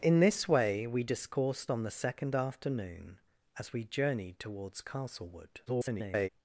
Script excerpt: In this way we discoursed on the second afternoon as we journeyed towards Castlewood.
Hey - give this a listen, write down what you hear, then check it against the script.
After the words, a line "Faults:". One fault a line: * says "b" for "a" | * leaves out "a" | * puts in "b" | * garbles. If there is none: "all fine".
In this way we discoursed on the second afternoon as we journeyed towards Castlewood. [garbled]
Faults:
* garbles